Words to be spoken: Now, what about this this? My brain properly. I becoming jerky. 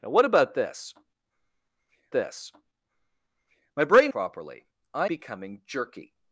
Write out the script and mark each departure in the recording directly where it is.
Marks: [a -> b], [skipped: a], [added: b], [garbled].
Now, what about this this? My brain properly. I becoming jerky.